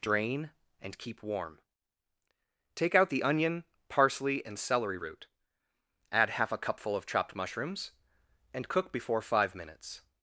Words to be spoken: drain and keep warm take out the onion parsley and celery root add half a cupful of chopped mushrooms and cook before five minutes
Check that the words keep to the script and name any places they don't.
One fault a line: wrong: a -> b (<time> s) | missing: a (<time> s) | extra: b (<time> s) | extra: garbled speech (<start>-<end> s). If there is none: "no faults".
no faults